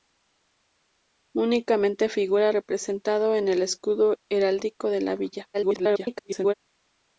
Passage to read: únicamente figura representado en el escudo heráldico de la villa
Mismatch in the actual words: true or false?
true